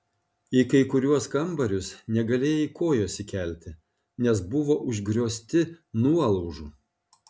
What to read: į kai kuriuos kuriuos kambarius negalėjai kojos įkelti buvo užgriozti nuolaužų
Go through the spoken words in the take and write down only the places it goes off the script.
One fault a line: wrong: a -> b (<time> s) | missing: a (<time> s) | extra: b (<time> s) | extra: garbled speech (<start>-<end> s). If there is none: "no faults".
missing: kuriuos (1.3 s)
extra: nes (4.3 s)